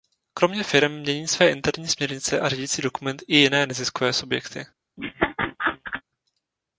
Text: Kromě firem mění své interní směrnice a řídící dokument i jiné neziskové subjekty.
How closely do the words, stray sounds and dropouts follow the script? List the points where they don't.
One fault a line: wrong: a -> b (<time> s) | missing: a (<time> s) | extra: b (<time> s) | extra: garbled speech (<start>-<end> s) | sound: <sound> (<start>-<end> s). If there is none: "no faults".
sound: laugh (5.0-6.0 s)